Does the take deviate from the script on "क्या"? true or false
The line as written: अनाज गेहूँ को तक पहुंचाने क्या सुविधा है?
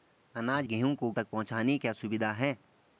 false